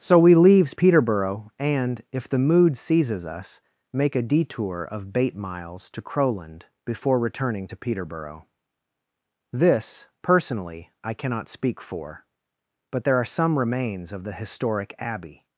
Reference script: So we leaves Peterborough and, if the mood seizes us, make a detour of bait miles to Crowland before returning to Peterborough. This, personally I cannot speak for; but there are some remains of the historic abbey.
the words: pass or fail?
pass